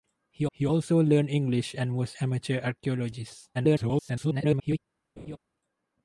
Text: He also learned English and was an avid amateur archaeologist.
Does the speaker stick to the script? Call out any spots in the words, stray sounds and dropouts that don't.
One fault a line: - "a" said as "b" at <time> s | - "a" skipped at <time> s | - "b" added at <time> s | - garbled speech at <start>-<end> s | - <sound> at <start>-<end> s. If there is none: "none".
- "he" added at 0.5 s
- "an avid" skipped at 2.1 s
- garbled speech at 3.5-4.8 s
- laugh at 5.2-5.4 s